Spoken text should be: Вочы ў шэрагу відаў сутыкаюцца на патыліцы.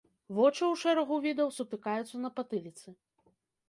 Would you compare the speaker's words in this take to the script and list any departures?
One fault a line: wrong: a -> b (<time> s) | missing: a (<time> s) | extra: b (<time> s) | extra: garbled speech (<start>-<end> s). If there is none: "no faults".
no faults